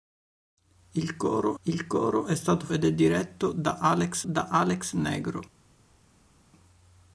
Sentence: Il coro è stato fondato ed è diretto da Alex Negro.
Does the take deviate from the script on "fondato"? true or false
true